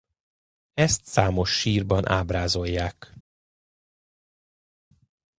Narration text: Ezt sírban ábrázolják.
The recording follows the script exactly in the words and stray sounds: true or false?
false